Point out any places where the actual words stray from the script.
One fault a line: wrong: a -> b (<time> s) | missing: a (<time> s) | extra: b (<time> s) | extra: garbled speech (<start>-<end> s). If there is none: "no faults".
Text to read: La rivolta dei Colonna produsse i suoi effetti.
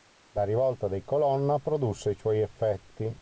no faults